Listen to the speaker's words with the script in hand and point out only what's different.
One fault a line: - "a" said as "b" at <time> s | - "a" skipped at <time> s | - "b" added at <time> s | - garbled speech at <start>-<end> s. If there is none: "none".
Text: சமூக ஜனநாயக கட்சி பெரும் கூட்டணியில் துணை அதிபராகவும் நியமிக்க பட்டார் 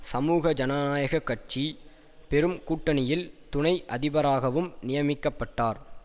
none